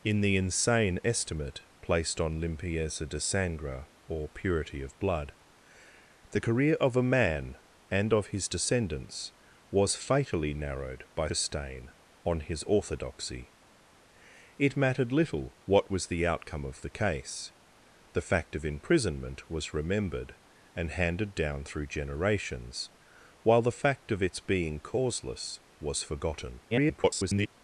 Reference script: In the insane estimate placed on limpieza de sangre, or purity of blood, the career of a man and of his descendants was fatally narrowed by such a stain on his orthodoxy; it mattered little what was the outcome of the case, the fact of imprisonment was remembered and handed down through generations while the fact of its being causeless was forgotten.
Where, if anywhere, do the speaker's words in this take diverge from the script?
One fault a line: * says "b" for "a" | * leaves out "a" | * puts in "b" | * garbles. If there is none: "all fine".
* leaves out "such"
* garbles